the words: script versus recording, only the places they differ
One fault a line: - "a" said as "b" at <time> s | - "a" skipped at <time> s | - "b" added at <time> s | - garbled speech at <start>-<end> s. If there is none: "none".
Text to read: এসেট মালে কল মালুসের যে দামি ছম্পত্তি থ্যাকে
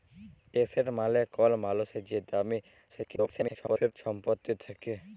- garbled speech at 2.9-3.9 s